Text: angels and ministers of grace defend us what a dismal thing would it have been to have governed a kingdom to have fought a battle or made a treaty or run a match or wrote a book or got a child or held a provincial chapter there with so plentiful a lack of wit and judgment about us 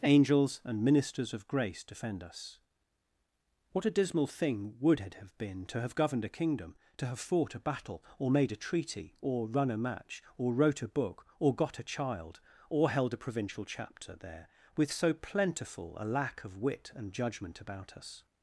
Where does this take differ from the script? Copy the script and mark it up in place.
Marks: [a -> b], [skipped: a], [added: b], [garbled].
angels and ministers of grace defend us what a dismal thing would it have been to have governed a kingdom to have fought a battle or made a treaty or run a match or wrote a book or got a child or held a provincial chapter there with so plentiful a lack of wit and judgment about us